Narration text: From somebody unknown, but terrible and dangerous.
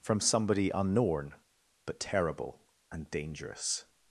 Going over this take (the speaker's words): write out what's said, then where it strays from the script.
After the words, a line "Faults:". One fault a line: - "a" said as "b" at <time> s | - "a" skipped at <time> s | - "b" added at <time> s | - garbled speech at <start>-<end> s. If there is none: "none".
From somebody unknown, but terrible and dangerous.
Faults:
none